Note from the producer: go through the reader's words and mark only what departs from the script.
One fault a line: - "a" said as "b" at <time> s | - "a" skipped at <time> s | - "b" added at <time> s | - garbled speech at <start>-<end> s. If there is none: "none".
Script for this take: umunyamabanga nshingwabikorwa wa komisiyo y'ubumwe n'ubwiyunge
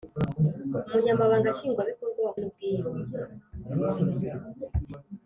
- "komisiyo y'ubumwe" skipped at 2.3 s